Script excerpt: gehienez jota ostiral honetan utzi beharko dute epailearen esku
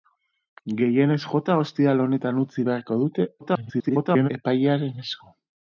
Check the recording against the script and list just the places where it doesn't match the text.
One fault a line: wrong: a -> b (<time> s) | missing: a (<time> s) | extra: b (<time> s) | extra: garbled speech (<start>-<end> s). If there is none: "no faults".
extra: garbled speech (3.4-4.3 s)